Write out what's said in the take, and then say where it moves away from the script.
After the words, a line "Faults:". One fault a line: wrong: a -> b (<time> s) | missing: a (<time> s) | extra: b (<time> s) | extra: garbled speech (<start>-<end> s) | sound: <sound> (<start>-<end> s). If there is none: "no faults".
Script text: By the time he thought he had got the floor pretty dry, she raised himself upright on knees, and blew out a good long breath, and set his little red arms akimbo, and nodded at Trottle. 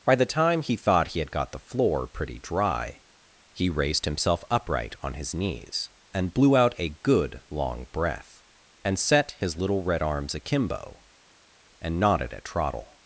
By the time he thought he had got the floor pretty dry, he raised himself upright on his knees, and blew out a good long breath, and set his little red arms akimbo, and nodded at Trottle.
Faults:
wrong: she -> he (3.5 s)
extra: his (5.1 s)